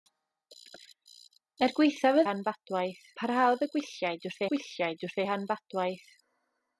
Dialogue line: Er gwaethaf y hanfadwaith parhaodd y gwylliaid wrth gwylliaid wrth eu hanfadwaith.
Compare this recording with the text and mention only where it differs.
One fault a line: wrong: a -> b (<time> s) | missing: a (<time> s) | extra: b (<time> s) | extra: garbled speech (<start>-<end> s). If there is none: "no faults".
no faults